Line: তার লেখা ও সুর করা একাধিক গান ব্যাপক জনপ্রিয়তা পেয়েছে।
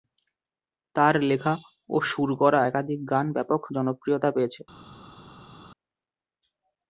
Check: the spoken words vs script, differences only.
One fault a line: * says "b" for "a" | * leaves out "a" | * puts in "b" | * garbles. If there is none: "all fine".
all fine